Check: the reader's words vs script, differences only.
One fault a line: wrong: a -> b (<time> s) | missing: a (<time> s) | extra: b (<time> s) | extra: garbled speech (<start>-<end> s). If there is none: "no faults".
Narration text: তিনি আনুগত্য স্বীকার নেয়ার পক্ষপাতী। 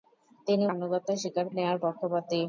no faults